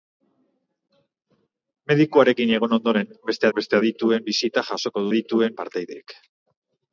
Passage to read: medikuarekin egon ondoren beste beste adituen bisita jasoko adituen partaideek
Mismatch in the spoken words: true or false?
false